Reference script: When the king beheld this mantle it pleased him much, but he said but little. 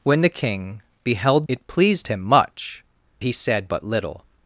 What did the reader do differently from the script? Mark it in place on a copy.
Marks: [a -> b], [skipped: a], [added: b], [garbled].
When the king beheld [skipped: this mantle] it pleased him much, [skipped: but] he said but little.